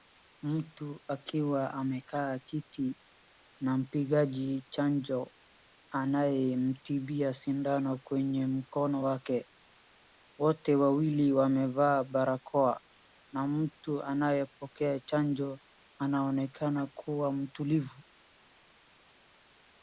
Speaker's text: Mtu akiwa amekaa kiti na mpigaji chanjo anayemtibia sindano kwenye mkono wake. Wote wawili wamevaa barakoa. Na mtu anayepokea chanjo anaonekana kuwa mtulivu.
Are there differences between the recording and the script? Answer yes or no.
no